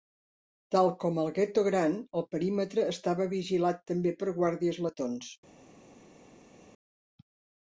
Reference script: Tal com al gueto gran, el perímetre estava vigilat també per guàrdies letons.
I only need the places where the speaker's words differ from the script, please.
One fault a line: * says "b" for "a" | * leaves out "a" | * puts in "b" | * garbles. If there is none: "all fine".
all fine